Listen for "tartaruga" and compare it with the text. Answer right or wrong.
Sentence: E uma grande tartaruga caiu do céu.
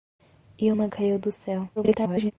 wrong